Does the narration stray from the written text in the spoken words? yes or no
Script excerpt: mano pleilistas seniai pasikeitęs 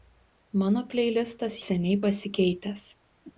no